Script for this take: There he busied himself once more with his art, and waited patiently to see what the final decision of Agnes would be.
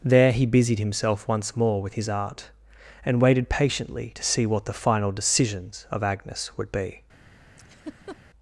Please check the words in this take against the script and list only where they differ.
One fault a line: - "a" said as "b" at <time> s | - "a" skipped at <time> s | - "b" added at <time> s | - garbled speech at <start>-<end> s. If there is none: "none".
- "decision" said as "decisions" at 5.1 s